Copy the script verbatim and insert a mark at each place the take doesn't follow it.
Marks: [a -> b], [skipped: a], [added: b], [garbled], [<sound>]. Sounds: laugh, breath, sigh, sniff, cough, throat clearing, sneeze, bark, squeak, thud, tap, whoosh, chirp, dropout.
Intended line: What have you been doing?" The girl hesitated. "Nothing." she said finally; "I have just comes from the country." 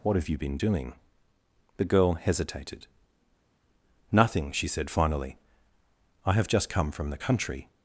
What have you been doing?" The girl hesitated. "Nothing." she said finally; "I have just [comes -> come] from the country."